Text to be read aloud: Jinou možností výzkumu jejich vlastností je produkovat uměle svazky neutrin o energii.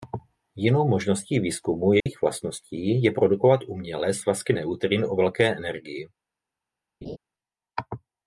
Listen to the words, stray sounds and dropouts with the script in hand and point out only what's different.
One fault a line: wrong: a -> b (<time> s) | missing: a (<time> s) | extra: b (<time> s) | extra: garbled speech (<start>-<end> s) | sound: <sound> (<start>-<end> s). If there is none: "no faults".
sound: dropout (2.0-2.1 s)
extra: velké (5.1 s)
sound: laugh (7.0-7.2 s)